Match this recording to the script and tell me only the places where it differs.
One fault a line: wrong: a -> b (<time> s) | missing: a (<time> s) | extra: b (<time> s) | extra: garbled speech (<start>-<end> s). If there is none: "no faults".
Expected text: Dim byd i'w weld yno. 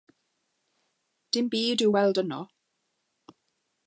no faults